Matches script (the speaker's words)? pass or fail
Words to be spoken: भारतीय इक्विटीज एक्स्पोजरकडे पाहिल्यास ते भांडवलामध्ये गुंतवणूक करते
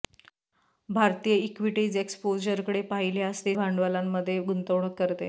pass